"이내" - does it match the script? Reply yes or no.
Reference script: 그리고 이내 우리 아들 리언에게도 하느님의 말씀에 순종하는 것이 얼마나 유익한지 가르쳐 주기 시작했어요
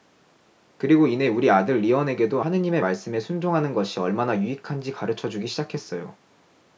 yes